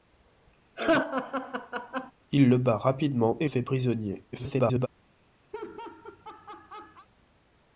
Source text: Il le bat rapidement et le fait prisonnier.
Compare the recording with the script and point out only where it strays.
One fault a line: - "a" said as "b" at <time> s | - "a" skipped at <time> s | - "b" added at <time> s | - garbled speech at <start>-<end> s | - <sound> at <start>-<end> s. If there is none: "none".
- laugh at 0.8-2.1 s
- "le" skipped at 3.5 s
- garbled speech at 4.3-4.9 s
- laugh at 5.5-7.1 s